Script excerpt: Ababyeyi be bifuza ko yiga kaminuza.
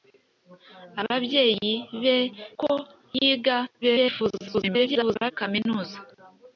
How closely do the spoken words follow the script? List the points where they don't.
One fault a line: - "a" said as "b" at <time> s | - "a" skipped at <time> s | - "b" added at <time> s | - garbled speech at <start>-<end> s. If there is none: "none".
- "bifuza" skipped at 2.2 s
- garbled speech at 3.8-5.3 s